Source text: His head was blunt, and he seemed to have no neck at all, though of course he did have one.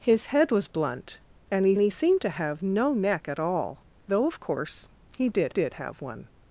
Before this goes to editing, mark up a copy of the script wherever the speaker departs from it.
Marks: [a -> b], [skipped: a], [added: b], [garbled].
His head was blunt, and he [added: he] seemed to have no neck at all, though of course he did [added: did] have one.